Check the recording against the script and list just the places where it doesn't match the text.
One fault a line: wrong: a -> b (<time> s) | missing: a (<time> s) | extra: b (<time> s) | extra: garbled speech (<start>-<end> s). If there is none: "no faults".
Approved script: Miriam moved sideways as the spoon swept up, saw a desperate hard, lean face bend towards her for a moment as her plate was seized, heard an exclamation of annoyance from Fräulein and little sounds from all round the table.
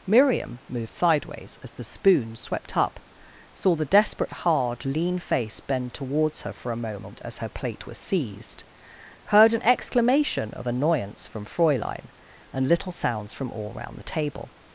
wrong: a -> the (3.8 s)